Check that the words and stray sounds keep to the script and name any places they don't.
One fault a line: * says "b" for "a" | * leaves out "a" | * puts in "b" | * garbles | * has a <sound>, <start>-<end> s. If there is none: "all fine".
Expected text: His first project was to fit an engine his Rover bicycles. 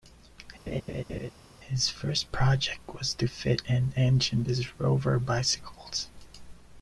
* has a laugh, 0.7-1.3 s